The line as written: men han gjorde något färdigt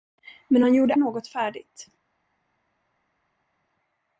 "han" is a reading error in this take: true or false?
false